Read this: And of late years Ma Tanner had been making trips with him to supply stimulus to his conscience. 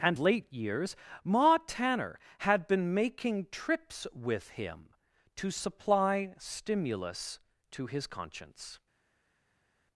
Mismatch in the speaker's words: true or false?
true